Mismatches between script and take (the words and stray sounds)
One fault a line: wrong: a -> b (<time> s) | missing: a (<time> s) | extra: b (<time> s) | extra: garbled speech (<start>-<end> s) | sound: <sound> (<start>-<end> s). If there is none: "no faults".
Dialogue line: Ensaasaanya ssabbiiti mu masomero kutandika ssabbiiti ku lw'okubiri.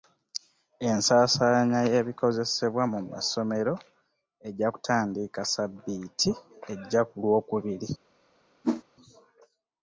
wrong: ssabbiiti -> y'ebikozesebwa (1.9 s)
extra: ejja (4.5 s)
extra: ejja (6.7 s)
sound: whoosh (8.6-8.8 s)